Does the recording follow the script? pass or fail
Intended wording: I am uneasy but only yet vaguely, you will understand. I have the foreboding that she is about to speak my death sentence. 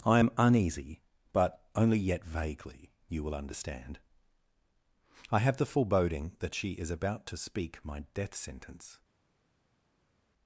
pass